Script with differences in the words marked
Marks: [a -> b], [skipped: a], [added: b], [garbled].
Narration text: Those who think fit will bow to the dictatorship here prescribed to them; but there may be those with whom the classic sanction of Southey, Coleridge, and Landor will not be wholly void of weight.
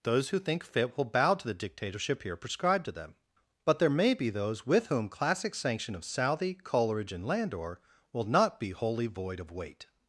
Those who think fit will bow to the dictatorship here prescribed to them; but there may be those with whom [skipped: the] classic sanction of Southey, Coleridge, and Landor will not be wholly void of weight.